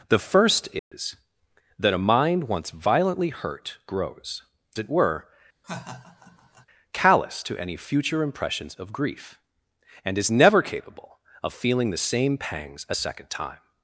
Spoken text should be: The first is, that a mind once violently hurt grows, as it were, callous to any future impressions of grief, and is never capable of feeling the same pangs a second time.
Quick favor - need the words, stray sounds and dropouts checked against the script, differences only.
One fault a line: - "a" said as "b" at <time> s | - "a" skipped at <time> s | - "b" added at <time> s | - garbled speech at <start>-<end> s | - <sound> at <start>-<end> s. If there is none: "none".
- dropout at 0.8-0.9 s
- "as" skipped at 4.4 s
- laugh at 5.6-6.7 s